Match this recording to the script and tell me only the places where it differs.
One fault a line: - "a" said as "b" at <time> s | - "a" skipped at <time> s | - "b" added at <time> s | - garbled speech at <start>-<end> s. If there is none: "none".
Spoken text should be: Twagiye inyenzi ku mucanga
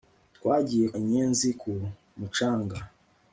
none